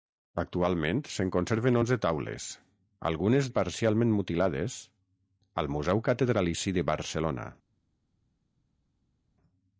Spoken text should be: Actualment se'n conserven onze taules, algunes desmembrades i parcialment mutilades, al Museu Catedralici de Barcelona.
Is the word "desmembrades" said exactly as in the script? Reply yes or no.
no